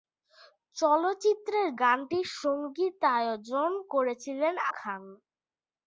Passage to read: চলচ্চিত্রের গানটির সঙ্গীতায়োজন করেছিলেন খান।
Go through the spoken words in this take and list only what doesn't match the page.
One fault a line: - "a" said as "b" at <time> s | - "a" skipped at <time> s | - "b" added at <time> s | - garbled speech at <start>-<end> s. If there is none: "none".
none